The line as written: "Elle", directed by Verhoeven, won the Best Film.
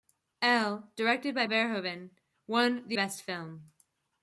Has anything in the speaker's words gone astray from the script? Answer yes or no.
no